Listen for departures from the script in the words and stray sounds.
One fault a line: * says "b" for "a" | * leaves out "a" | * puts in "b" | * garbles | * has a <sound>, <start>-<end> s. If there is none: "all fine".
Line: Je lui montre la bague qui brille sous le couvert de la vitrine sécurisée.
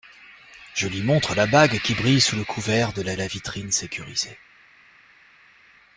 * puts in "la"